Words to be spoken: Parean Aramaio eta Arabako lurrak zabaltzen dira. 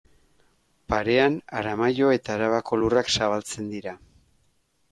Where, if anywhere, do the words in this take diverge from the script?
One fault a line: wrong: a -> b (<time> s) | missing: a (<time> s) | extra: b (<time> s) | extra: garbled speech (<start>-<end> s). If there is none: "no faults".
no faults